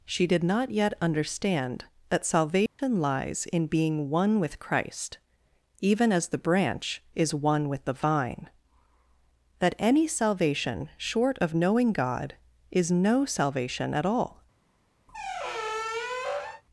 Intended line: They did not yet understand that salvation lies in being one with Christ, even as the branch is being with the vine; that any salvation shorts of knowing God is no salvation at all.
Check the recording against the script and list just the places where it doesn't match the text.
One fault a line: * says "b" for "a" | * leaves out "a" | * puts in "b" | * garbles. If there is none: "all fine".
* says "She" for "They"
* says "one" for "being"
* says "short" for "shorts"